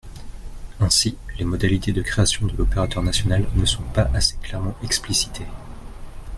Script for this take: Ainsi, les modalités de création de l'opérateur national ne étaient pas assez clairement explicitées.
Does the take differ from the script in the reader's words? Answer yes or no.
yes